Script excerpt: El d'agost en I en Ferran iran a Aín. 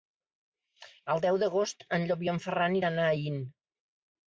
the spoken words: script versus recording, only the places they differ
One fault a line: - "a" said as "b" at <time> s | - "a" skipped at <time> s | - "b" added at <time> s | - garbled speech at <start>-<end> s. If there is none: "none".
- "deu" added at 1.3 s
- "Llop" added at 2.1 s